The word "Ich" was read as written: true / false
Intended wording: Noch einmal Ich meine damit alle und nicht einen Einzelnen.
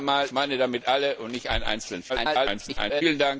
false